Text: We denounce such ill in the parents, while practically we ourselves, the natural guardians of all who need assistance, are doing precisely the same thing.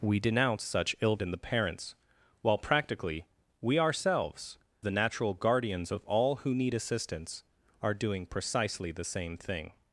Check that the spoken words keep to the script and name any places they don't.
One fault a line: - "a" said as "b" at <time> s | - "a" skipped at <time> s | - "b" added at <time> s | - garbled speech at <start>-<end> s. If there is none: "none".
none